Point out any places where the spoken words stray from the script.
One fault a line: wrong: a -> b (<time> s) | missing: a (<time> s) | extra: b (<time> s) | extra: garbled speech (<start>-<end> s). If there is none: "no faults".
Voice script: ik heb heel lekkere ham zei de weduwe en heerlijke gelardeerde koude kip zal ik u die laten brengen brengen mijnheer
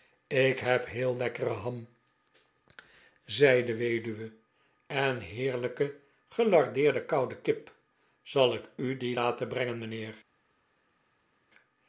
missing: brengen (9.8 s)